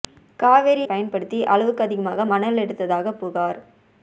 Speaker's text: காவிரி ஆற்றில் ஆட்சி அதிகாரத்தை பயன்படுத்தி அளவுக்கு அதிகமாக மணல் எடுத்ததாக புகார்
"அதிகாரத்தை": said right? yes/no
no